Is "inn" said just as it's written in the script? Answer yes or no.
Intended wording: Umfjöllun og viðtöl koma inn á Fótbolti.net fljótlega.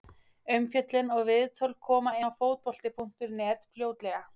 no